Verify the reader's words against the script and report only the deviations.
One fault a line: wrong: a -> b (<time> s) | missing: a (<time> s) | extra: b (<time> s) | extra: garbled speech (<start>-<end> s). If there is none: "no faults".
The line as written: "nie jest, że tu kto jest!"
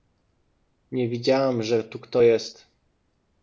wrong: jest -> widziałam (1.1 s)